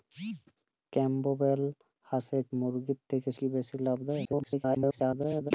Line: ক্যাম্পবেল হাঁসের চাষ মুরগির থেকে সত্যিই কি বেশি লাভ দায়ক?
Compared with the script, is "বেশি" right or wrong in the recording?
right